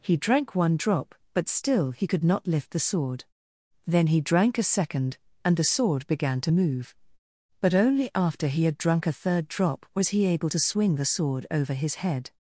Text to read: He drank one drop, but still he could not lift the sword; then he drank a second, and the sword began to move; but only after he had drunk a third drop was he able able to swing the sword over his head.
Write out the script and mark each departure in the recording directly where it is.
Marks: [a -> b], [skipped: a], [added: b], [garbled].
He drank one drop, but still he could not lift the sword; then he drank a second, and the sword began to move; but only after he had drunk a third drop was he able [skipped: able] to swing the sword over his head.